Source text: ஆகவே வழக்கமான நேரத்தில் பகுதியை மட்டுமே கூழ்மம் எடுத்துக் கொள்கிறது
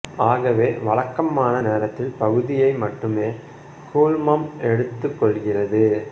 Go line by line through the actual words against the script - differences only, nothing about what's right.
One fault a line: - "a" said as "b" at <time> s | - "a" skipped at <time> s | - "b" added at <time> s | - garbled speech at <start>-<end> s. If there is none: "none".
none